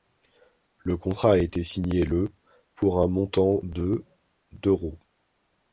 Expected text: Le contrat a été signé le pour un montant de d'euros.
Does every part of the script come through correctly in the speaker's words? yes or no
yes